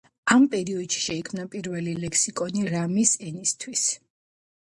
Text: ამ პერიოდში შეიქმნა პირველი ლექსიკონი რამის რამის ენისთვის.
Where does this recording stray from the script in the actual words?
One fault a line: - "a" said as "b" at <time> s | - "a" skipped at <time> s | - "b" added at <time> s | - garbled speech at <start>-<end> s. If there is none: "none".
- "რამის" skipped at 3.1 s